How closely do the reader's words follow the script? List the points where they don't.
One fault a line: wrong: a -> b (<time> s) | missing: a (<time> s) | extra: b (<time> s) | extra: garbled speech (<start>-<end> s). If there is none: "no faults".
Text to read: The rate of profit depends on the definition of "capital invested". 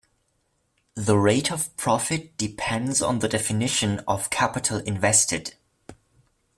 no faults